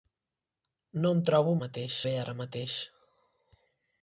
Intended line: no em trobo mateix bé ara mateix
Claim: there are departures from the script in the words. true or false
false